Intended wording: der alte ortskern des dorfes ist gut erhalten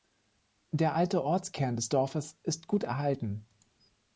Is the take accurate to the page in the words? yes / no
yes